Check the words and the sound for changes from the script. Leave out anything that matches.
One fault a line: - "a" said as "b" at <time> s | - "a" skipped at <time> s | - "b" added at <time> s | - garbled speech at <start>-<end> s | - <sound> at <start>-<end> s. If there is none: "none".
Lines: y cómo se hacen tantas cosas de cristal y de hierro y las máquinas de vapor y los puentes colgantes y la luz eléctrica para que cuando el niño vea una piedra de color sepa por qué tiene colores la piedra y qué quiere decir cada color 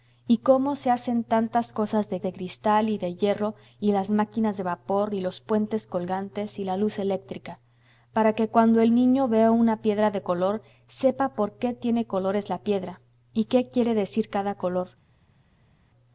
- "de" added at 2.2 s